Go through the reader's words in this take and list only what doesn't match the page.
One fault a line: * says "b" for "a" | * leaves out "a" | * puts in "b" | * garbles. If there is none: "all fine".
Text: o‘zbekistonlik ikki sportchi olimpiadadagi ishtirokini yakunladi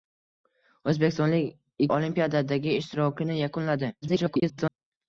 * leaves out "ikki sportchi"
* garbles